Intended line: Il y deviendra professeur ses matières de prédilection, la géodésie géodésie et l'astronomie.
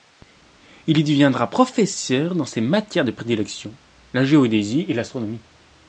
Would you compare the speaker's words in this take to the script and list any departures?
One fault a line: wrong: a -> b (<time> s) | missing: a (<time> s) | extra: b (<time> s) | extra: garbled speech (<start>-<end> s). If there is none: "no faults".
extra: dans (2.3 s)
missing: géodésie (4.9 s)